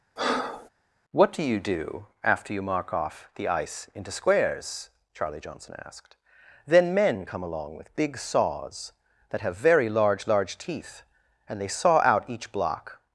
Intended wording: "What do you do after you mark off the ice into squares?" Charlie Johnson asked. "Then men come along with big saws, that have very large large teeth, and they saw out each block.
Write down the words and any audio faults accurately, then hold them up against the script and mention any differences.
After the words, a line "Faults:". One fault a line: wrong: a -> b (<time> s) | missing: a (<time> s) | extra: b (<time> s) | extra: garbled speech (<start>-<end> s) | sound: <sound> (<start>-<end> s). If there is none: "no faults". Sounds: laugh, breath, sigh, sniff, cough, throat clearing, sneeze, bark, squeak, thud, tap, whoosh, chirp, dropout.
"What do you do after you mark off the ice into squares?" Charlie Johnson asked. "Then men come along with big saws, that have very large large teeth, and they saw out each block.
Faults:
sound: breath (0.2-0.7 s)